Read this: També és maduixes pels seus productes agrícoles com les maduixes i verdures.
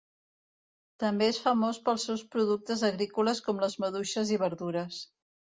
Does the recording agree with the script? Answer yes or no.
no